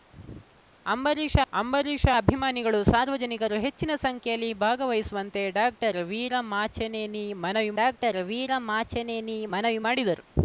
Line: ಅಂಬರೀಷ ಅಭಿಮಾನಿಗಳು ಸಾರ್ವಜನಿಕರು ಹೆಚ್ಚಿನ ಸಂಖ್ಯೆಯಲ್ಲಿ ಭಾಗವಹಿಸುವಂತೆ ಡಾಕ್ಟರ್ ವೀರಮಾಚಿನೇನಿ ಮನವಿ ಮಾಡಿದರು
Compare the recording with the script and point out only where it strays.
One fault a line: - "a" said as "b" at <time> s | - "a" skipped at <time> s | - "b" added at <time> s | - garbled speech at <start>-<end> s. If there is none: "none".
- "ಅಂಬರೀಷ" added at 1.5 s
- "ಡಾಕ್ಟರ್ ವೀರಮಾಚಿನೇನಿ ಮನವಿ" added at 7.8 s